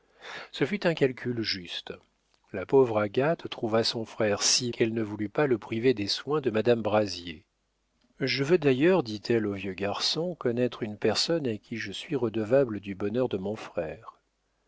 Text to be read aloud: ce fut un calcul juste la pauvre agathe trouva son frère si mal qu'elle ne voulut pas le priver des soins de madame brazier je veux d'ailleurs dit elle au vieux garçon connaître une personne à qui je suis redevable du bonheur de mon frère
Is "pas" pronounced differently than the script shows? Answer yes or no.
no